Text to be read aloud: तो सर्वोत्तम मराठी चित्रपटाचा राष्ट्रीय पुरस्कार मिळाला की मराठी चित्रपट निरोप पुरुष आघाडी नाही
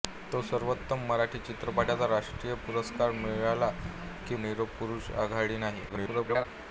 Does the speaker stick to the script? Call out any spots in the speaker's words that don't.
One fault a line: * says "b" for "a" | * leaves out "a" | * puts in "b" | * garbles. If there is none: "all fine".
* leaves out "मराठी चित्रपट"
* garbles